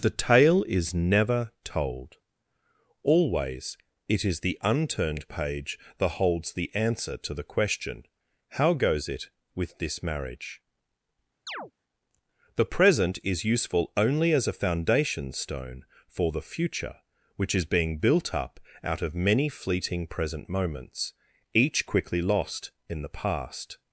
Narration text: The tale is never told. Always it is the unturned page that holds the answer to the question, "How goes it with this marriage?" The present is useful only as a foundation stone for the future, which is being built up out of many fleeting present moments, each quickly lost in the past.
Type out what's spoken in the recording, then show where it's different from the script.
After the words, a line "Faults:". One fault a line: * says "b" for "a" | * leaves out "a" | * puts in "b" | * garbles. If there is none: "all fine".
The tale is never told. Always it is the unturned page that holds the answer to the question, "How goes it with this marriage?" The present is useful only as a foundation stone for the future, which is being built up out of many fleeting present moments, each quickly lost in the past.
Faults:
all fine